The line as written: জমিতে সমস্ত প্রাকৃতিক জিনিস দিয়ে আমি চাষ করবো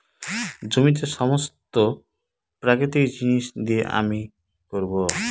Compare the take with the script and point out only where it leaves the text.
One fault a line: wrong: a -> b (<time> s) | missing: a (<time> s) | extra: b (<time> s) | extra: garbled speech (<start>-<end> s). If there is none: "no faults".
missing: চাষ (4.2 s)